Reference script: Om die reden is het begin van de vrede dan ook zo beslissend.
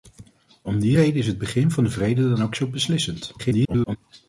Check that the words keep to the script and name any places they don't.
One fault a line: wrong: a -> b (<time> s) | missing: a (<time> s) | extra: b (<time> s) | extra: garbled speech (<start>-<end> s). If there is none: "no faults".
extra: garbled speech (3.4-4.0 s)